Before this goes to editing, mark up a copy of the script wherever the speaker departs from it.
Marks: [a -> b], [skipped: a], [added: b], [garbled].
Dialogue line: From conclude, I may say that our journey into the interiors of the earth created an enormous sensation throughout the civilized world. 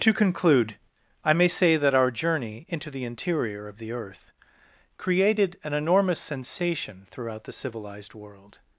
[From -> To] conclude, I may say that our journey into the [interiors -> interior] of the earth created an enormous sensation throughout the civilized world.